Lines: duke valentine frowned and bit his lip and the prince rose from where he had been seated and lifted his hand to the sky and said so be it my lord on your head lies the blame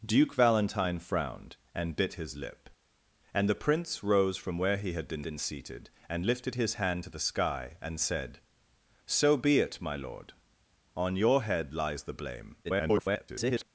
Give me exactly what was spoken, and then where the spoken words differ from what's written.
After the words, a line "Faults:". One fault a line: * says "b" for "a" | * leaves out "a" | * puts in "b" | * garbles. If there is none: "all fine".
duke valentine frowned and bit his lip and the prince rose from where he had been been seated and lifted his hand to the sky and said so be it my lord on your head lies the blame [garbled]
Faults:
* puts in "been"
* garbles